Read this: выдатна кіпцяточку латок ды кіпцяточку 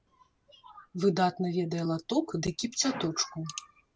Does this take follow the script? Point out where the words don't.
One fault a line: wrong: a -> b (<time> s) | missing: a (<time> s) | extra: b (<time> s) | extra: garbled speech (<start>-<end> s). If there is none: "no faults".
wrong: кіпцяточку -> ведае (1.6 s)